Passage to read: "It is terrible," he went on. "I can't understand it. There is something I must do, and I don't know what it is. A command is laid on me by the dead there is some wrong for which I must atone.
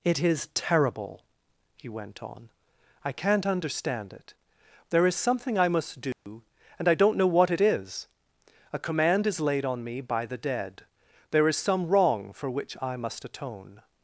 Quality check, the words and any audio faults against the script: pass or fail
fail